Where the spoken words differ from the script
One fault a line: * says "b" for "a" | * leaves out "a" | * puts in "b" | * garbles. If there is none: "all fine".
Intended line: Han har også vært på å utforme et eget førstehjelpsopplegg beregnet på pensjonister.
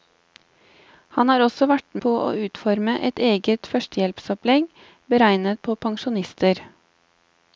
all fine